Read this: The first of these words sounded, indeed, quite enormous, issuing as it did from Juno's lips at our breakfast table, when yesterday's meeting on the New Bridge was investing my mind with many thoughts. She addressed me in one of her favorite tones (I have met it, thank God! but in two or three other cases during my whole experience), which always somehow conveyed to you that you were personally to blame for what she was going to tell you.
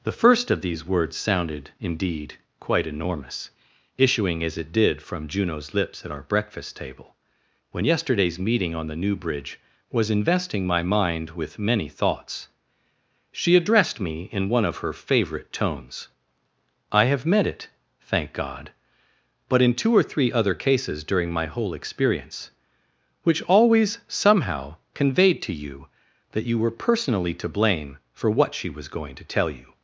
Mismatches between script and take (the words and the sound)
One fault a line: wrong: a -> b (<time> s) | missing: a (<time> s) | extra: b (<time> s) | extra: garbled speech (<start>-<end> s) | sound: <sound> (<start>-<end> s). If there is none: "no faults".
no faults